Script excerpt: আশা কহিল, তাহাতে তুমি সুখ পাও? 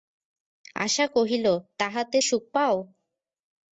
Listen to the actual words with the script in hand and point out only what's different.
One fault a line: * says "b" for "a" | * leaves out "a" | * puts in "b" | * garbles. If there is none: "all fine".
* leaves out "তুমি"